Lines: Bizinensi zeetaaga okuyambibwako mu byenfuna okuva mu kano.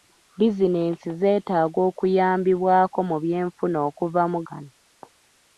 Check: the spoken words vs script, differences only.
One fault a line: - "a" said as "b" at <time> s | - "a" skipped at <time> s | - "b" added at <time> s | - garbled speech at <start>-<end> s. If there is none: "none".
none